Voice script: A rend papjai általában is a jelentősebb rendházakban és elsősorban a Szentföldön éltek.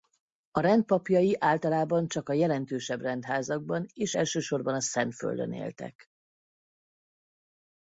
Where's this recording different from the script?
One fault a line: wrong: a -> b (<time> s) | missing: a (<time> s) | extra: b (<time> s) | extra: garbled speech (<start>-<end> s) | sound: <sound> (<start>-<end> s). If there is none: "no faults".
wrong: is -> csak (2.1 s)